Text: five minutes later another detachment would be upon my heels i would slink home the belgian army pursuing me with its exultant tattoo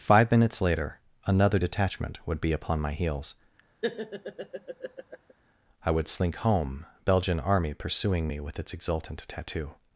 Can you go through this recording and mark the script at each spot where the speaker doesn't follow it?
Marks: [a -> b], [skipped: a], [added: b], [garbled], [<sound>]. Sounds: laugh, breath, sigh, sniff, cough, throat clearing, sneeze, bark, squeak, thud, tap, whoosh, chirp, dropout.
five minutes later another detachment would be upon my heels [laugh] i would slink home [skipped: the] belgian army pursuing me with its exultant tattoo